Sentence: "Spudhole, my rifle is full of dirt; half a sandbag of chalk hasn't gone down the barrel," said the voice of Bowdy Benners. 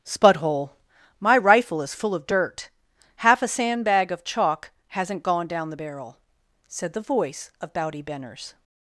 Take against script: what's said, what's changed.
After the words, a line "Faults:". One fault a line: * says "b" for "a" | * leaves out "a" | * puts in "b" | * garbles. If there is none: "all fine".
"Spudhole, my rifle is full of dirt; half a sandbag of chalk hasn't gone down the barrel," said the voice of Bowdy Benners.
Faults:
all fine